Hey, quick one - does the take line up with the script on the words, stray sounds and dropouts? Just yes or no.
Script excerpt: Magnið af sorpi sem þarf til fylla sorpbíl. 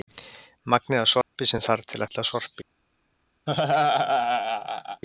no